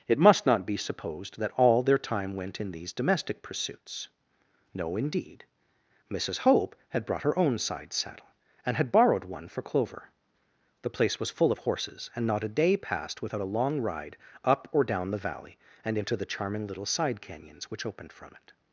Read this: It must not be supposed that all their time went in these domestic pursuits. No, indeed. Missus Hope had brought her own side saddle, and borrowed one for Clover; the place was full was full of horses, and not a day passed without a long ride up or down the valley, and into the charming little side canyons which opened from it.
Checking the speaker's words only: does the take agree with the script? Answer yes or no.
no